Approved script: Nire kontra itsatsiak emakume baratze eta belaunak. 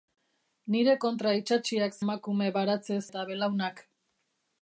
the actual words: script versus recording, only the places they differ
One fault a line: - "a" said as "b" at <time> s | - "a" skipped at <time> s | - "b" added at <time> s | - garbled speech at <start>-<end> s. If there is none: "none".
none